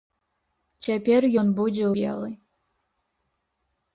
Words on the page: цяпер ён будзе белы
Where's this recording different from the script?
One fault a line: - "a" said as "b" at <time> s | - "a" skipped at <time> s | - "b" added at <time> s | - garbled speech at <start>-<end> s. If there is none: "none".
none